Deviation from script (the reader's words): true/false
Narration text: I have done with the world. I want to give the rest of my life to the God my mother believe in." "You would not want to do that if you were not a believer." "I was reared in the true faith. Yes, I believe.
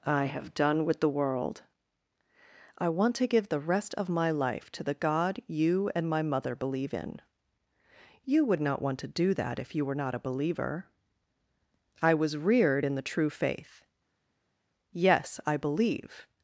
true